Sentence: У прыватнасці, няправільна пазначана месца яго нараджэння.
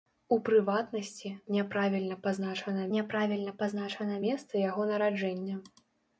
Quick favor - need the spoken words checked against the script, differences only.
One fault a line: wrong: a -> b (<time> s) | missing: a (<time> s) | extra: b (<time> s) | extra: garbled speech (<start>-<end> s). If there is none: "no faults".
extra: няправільна пазначана (3.0 s)